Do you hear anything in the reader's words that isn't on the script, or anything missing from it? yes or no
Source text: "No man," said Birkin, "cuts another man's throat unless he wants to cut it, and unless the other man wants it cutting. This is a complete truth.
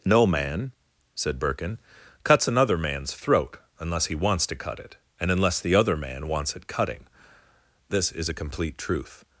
no